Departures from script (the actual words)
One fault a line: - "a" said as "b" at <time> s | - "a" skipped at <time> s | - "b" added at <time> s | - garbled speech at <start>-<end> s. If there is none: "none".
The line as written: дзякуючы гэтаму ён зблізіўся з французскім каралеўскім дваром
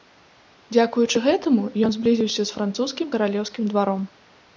none